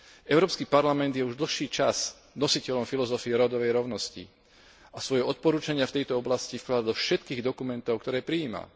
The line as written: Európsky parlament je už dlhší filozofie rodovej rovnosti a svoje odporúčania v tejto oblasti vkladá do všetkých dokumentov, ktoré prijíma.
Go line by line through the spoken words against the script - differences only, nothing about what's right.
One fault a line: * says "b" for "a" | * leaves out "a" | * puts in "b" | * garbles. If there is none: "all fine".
* puts in "čas nositeľom"